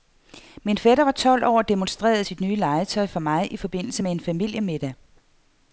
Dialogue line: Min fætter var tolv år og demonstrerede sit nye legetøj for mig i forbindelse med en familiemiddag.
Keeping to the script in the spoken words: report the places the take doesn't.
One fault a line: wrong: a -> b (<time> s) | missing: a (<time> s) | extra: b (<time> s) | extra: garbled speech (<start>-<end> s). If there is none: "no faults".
no faults